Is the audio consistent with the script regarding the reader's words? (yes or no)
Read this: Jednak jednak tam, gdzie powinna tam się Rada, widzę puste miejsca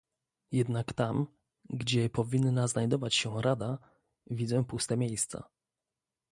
no